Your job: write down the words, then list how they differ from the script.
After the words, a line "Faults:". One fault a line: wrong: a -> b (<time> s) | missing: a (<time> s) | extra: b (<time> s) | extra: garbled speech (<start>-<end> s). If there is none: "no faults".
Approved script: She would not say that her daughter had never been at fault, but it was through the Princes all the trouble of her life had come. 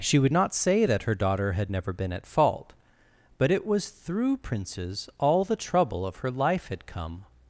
She would not say that her daughter had never been at fault, but it was through Princes all the trouble of her life had come.
Faults:
missing: the (4.4 s)